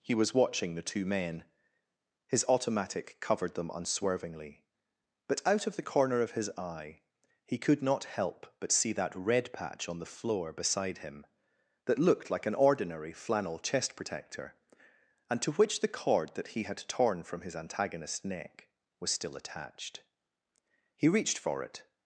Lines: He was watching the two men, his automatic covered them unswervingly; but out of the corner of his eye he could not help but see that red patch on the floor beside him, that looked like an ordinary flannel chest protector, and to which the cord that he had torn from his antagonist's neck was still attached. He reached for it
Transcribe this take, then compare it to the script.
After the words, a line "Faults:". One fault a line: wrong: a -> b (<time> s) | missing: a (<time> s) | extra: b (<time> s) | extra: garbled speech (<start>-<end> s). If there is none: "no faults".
He was watching the two men, his automatic covered them unswervingly; but out of the corner of his eye he could not help but see that red patch on the floor beside him, that looked like an ordinary flannel chest protector, and to which the cord that he had torn from his antagonist's neck was still attached. He reached for it
Faults:
no faults